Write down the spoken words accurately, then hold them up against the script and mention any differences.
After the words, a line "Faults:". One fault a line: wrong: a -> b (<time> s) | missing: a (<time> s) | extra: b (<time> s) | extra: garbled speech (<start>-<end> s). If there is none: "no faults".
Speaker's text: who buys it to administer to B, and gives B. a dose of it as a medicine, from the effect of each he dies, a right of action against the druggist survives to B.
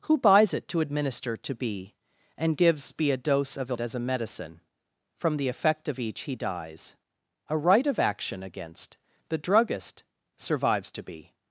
who buys it to administer to B, and gives B. a dose of it as a medicine, from the effect of each he dies, a right of action against the druggist survives to B.
Faults:
no faults